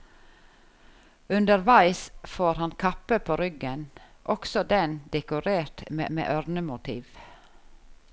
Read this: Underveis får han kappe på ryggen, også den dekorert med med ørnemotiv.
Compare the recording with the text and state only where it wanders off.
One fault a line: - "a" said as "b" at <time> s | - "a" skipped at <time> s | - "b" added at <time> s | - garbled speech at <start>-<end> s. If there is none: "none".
none